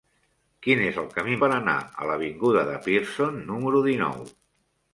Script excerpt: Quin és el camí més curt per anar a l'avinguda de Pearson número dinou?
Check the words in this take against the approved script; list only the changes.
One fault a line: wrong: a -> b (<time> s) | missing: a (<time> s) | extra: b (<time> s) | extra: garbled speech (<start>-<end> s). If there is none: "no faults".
missing: més curt (1.4 s)